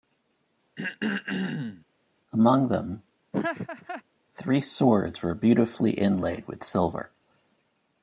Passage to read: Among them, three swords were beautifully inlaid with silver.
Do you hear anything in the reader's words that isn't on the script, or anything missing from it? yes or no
no